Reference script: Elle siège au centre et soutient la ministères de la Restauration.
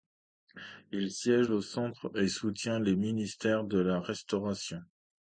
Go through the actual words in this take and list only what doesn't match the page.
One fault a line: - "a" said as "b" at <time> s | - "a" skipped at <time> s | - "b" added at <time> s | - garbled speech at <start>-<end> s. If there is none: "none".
- "Elle" said as "Il" at 0.9 s
- "la" said as "les" at 2.8 s